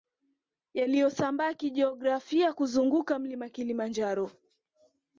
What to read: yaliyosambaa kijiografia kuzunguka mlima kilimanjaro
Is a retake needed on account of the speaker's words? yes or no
no